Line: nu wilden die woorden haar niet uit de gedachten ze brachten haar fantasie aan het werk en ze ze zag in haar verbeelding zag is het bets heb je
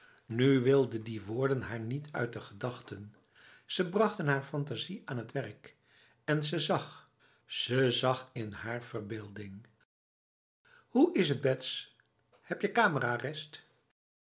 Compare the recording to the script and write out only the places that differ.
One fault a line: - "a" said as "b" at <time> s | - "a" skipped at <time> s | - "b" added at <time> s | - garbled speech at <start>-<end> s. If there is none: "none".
- "zag" added at 6.6 s
- "zag" said as "hoe" at 10.9 s